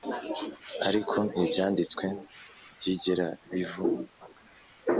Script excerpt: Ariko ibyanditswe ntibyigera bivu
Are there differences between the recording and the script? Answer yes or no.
no